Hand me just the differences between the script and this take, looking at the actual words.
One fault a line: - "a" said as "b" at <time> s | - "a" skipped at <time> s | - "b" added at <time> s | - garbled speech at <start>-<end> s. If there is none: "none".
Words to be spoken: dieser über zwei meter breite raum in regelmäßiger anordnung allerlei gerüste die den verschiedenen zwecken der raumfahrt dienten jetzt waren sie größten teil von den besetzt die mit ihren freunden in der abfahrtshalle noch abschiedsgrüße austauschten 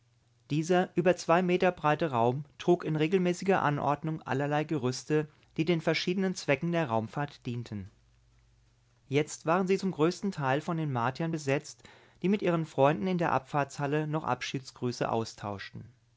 - "trug" added at 2.6 s
- "zum" added at 9.7 s
- "martiern" added at 10.9 s